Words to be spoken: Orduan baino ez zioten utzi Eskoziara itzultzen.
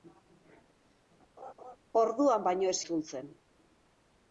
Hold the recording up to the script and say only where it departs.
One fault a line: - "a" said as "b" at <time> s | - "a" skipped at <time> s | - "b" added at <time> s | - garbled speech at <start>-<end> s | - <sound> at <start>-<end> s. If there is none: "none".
- laugh at 1.4-1.8 s
- "zioten utzi Eskoziara" skipped at 2.8 s